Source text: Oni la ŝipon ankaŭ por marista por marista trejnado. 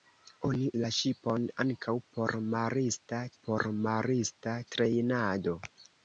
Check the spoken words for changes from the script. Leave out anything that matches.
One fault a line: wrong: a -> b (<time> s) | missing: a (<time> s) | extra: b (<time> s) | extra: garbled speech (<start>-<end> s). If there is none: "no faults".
no faults